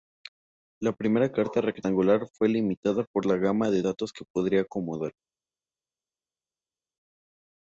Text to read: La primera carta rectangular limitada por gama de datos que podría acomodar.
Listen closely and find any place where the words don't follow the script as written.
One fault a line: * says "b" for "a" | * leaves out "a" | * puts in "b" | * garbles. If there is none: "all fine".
* puts in "fue"
* puts in "la"